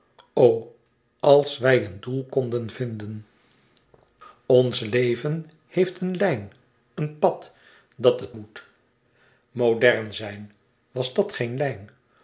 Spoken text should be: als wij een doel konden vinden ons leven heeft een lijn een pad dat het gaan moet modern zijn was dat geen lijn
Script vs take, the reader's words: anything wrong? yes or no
yes